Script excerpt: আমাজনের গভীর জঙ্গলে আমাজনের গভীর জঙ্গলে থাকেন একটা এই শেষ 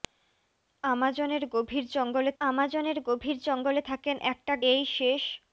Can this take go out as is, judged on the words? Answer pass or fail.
pass